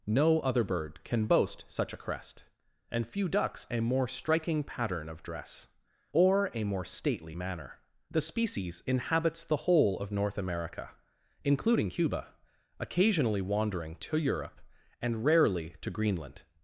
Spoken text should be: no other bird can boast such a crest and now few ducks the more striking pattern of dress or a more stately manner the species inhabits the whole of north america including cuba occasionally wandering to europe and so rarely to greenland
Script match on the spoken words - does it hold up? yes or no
no